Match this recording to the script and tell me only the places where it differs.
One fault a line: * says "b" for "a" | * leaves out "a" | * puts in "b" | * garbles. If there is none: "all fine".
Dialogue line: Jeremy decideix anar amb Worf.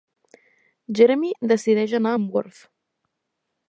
all fine